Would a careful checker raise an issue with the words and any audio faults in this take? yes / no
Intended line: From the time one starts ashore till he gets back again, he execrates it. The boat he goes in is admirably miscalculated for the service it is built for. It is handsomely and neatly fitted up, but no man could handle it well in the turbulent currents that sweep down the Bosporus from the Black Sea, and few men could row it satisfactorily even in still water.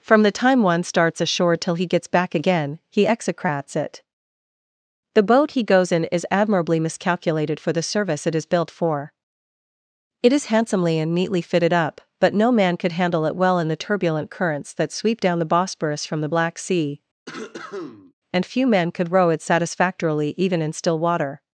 yes